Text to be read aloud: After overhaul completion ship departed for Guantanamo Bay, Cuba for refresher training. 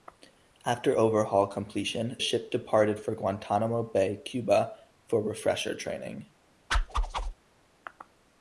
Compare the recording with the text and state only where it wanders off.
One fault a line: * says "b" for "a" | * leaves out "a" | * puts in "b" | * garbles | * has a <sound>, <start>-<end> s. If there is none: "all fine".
* has a whoosh, 6.7-7.3 s